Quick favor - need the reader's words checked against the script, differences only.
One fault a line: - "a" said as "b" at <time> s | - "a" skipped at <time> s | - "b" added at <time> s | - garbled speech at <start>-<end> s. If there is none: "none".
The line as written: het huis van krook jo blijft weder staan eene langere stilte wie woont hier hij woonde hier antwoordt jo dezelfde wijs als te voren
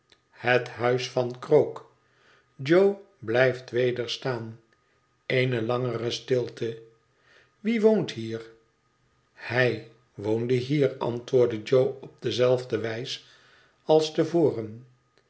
- "op" added at 12.0 s